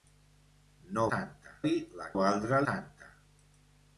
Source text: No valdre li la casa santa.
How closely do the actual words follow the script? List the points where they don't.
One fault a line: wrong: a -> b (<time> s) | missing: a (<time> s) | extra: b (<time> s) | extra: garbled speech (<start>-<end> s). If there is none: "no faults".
wrong: valdre -> santa (1.1 s)
wrong: casa -> valdre (2.2 s)